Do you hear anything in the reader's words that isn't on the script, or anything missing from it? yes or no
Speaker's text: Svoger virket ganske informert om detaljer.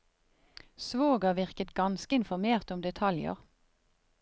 no